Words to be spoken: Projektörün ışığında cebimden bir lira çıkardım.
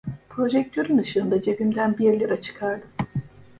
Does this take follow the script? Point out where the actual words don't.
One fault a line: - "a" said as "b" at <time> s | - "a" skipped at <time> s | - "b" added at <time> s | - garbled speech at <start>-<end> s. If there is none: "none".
none